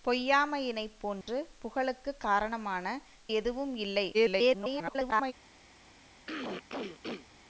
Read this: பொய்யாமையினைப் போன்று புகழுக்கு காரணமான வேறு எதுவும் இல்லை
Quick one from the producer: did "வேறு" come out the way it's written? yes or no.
no